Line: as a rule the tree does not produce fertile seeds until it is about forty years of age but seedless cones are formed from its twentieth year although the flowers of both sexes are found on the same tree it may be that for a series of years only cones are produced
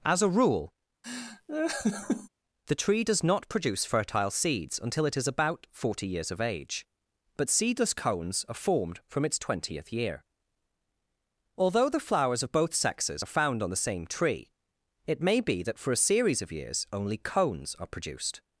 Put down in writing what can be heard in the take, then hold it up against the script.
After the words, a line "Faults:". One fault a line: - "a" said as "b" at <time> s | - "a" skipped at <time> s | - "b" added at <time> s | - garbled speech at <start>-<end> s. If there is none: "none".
as a rule the tree does not produce fertile seeds until it is about forty years of age but seedless cones are formed from its twentieth year although the flowers of both sexes are found on the same tree it may be that for a series of years only cones are produced
Faults:
none